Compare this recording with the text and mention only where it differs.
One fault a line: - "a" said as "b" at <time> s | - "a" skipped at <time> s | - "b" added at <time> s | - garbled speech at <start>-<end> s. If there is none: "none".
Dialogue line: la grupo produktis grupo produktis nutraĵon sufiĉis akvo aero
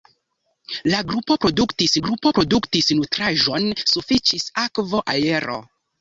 none